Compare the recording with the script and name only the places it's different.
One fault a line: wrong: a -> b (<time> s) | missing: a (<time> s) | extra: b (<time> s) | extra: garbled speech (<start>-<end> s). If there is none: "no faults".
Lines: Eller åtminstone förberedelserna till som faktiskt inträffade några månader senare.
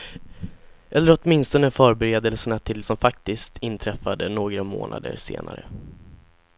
no faults